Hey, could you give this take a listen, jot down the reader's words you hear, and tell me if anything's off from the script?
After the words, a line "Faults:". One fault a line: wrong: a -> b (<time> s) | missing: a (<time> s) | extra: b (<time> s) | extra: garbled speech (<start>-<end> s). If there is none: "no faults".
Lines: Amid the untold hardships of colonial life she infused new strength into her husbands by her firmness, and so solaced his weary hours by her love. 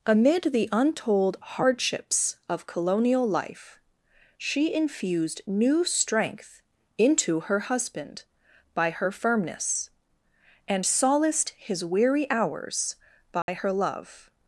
Amid the untold hardships of colonial life she infused new strength into her husband by her firmness, and solaced his weary hours by her love.
Faults:
wrong: husbands -> husband (7.6 s)
missing: so (10.9 s)